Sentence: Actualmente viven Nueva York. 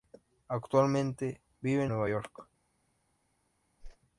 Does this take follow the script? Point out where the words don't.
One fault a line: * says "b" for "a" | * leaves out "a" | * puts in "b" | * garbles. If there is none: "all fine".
all fine